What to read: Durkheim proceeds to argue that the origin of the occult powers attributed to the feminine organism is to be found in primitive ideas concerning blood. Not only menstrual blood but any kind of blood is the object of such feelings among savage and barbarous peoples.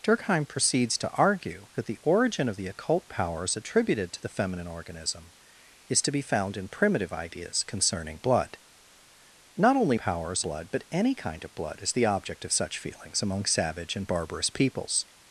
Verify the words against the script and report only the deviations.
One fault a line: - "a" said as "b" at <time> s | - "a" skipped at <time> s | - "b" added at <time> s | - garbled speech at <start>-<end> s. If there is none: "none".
- "menstrual" said as "powers" at 10.0 s